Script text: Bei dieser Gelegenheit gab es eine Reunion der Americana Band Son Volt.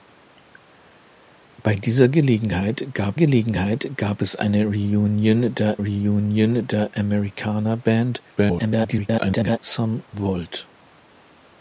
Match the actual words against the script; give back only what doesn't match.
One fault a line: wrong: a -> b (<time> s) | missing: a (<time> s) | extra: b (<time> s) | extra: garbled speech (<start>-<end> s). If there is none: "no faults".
extra: Gelegenheit gab (3.1 s)
extra: Reunion der (5.8 s)
extra: garbled speech (8.4-9.6 s)